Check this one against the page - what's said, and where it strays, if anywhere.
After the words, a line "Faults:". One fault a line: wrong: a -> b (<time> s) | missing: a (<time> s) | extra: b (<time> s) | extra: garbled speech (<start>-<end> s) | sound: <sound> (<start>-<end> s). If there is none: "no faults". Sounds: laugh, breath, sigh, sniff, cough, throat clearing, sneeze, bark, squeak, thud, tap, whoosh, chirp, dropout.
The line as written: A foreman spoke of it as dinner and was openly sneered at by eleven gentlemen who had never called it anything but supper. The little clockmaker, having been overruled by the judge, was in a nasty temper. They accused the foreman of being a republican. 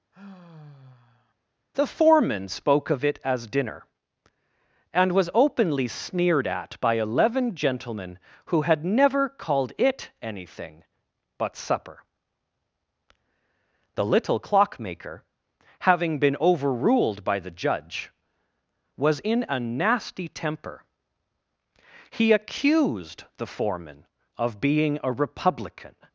The foreman spoke of it as dinner and was openly sneered at by eleven gentlemen who had never called it anything but supper. The little clockmaker, having been overruled by the judge, was in a nasty temper. He accused the foreman of being a republican.
Faults:
sound: sigh (0.1-1.3 s)
wrong: A -> The (1.8 s)
wrong: They -> He (22.1 s)